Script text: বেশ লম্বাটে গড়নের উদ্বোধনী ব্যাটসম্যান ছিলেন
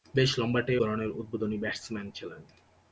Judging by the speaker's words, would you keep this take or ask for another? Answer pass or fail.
pass